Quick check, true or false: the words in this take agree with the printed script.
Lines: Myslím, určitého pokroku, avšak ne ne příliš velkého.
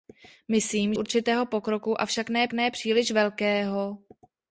true